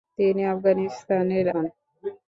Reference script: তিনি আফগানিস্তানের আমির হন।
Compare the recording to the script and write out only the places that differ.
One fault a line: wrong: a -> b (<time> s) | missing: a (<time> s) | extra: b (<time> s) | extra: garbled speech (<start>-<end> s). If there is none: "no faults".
missing: আমির (1.4 s)